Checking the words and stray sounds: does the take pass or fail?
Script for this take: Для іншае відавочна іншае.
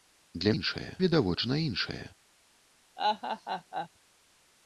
fail